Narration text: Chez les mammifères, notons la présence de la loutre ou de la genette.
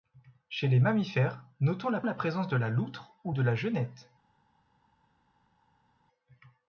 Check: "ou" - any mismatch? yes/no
no